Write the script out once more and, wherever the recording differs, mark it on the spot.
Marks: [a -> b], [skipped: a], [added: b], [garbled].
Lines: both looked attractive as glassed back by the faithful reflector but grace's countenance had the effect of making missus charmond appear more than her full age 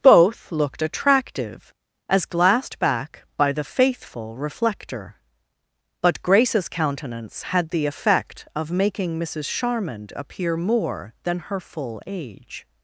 both looked attractive as glassed back by the faithful reflector but grace's countenance had the effect of making missus charmond appear more than her full age